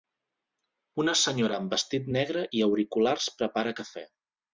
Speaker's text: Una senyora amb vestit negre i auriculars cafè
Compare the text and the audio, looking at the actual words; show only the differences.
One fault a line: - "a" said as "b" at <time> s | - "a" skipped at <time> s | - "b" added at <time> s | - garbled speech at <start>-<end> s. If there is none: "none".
- "prepara" added at 3.4 s